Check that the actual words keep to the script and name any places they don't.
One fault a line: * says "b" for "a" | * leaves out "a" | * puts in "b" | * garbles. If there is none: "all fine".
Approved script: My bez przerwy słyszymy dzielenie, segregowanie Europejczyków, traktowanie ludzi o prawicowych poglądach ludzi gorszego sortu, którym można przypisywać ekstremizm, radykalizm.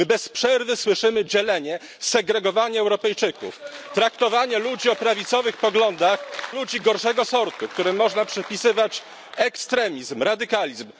all fine